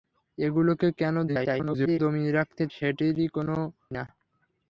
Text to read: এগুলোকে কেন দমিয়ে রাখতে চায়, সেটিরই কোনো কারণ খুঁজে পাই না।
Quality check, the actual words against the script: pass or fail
fail